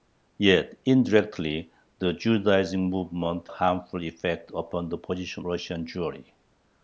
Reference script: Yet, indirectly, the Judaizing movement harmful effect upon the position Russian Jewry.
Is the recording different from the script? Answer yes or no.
no